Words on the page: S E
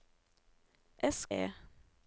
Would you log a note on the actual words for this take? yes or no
no